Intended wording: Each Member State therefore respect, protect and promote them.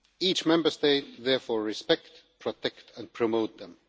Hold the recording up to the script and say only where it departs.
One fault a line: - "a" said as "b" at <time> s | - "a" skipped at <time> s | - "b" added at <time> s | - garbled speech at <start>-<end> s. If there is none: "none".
none